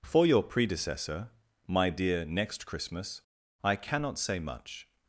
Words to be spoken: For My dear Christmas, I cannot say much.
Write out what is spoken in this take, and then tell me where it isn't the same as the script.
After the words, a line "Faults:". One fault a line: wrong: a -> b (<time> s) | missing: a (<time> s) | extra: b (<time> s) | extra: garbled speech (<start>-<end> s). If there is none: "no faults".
For your predecessor, My dear Next Christmas, I cannot say much.
Faults:
extra: your predecessor (0.2 s)
extra: Next (2.2 s)